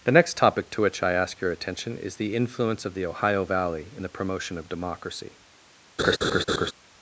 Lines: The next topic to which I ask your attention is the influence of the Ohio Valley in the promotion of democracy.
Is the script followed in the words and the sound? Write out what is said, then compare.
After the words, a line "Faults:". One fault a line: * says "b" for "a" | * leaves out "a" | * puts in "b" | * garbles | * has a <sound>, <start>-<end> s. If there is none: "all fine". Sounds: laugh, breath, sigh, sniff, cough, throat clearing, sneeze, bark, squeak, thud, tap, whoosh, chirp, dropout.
The next topic to which I ask your attention is the influence of the Ohio Valley in the promotion of democracy.
Faults:
* has a laugh, 6.0-6.7 s